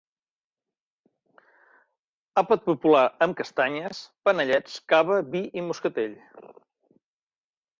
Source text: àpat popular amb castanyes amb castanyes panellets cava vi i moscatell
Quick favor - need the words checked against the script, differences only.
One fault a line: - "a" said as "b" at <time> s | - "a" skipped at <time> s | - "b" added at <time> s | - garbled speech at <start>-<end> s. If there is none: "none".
- "amb castanyes" skipped at 4.0 s